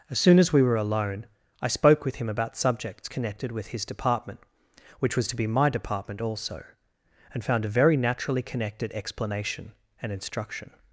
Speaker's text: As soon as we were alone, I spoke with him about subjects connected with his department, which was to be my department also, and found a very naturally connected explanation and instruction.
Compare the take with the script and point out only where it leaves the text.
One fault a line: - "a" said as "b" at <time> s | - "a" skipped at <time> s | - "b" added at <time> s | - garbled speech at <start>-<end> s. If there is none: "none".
none